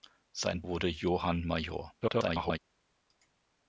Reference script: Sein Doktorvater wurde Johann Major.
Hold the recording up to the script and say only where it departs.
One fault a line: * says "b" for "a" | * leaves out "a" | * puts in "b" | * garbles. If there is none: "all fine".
* leaves out "Doktorvater"
* garbles